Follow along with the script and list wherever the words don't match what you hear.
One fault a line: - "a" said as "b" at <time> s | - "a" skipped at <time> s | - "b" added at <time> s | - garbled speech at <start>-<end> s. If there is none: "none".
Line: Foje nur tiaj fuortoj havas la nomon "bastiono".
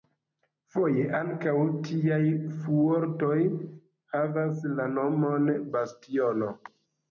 - "nur" said as "ankaŭ" at 1.2 s